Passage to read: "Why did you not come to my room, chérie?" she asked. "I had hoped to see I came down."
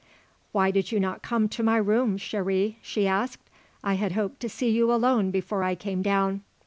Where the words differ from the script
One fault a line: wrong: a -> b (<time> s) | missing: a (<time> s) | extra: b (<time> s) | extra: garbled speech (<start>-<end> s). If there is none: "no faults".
extra: you alone before (4.7 s)